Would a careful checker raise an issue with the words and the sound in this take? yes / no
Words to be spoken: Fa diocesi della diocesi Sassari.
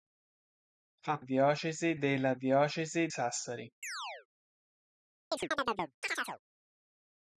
yes